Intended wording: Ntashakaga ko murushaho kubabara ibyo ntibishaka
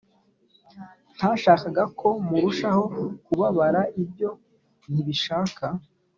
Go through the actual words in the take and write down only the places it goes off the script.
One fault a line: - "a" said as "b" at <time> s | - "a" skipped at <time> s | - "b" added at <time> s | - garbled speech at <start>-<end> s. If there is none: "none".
none